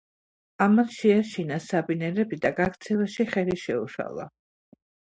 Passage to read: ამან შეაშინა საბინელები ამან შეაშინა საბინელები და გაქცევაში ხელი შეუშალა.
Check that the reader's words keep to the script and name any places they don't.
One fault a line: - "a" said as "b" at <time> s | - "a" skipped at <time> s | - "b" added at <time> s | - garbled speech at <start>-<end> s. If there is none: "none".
- "ამან შეაშინა საბინელები" skipped at 2.4 s